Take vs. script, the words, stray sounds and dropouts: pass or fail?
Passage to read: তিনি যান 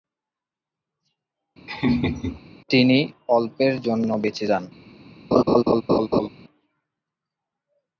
fail